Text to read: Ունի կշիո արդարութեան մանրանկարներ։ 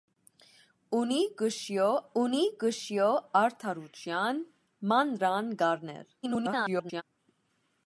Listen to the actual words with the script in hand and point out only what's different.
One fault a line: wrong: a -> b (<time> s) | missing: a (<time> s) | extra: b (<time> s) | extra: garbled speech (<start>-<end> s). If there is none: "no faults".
extra: ունի կշիո (2.2 s)
extra: garbled speech (6.2-7.0 s)